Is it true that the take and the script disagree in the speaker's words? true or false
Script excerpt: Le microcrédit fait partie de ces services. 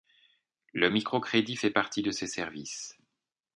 false